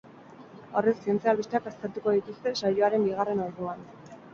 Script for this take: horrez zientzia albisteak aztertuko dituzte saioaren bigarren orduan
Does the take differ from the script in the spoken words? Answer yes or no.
no